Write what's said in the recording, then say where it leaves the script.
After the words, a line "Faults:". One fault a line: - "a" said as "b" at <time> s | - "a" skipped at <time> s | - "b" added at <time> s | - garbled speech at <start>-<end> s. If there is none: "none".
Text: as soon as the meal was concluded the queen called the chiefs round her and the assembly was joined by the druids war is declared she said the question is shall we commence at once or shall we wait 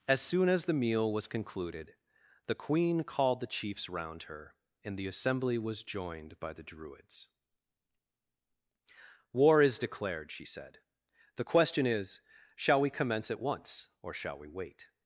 as soon as the meal was concluded the queen called the chiefs round her and the assembly was joined by the druids war is declared she said the question is shall we commence at once or shall we wait
Faults:
none